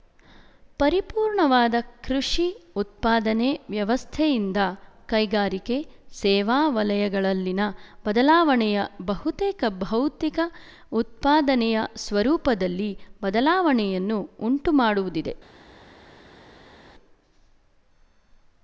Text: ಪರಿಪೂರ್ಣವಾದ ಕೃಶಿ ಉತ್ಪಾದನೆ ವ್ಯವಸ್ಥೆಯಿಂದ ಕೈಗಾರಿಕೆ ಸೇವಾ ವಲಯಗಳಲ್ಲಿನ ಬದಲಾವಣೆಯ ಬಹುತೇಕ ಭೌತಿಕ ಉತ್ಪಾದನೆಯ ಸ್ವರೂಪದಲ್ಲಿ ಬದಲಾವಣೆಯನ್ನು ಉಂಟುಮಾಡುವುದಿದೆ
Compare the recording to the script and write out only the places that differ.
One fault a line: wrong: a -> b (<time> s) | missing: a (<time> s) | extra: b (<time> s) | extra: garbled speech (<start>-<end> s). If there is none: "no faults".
no faults